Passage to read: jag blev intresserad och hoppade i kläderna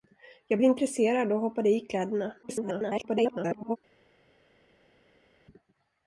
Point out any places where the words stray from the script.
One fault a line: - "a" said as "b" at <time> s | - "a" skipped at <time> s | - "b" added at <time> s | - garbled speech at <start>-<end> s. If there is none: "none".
- "blev" skipped at 0.6 s
- garbled speech at 2.4-3.8 s